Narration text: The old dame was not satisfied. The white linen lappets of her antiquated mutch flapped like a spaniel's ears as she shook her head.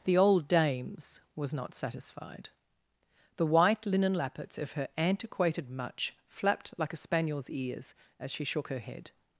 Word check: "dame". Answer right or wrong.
wrong